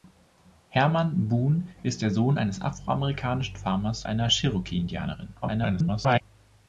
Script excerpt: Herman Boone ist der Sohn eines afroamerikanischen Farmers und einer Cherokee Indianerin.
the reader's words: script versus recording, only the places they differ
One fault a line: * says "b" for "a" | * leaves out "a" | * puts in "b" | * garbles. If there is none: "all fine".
* leaves out "und"
* garbles